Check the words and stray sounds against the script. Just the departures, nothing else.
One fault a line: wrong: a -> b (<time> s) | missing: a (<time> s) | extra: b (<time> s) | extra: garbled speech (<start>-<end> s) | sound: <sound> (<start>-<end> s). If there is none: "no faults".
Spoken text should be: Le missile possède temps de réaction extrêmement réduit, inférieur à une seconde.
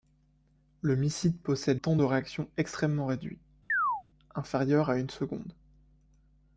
sound: chirp (3.7-4.0 s)